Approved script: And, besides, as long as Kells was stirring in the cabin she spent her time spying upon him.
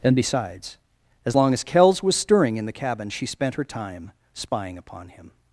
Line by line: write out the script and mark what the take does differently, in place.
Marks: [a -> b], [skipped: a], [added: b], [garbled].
And, besides, as long as Kells was stirring in the cabin she spent her time spying upon him.